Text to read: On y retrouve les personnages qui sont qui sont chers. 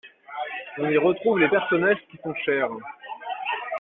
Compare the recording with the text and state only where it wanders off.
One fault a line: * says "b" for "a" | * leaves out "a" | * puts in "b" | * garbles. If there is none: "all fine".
* leaves out "qui sont"